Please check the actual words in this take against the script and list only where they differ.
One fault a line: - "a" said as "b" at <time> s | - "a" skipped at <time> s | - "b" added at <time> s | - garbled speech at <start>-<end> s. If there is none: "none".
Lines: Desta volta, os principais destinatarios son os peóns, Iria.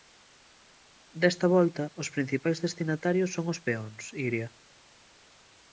none